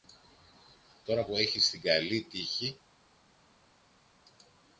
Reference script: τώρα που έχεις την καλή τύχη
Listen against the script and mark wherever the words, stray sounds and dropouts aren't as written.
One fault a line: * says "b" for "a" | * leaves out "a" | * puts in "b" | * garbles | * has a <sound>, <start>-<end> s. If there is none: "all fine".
all fine